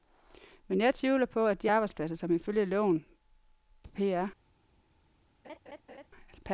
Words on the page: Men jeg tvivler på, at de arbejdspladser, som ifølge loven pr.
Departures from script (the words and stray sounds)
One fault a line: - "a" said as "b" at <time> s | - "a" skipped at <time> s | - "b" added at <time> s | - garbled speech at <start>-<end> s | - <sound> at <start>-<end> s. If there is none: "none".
- laugh at 5.4-6.1 s